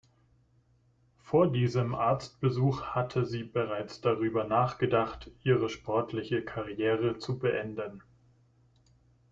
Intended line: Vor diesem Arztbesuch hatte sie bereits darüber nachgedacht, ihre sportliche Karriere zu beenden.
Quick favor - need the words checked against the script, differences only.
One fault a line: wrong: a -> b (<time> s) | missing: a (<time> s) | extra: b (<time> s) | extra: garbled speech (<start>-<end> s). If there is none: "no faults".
no faults